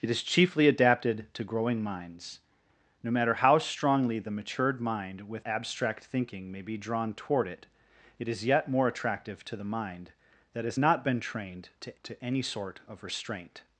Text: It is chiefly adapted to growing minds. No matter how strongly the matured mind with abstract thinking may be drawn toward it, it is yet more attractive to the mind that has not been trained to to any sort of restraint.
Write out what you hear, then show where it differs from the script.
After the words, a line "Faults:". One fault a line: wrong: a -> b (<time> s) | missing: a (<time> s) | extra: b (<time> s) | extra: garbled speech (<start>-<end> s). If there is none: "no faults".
It is chiefly adapted to growing minds. No matter how strongly the matured mind with abstract thinking may be drawn toward it, it is yet more attractive to the mind that has not been trained to to any sort of restraint.
Faults:
no faults